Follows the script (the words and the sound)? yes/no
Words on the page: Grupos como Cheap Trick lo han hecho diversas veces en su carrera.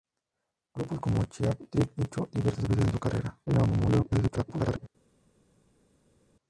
no